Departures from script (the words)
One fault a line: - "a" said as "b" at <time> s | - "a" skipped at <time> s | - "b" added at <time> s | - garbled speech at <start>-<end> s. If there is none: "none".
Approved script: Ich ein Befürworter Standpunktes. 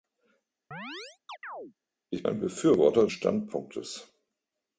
none